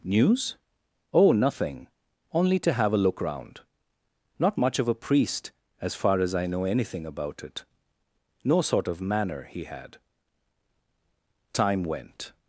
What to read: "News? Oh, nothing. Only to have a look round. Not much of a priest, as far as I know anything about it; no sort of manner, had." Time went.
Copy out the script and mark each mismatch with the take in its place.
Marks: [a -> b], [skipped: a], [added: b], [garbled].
"News? Oh, nothing. Only to have a look round. Not much of a priest, as far as I know anything about it; no sort of manner, [added: he] had." Time went.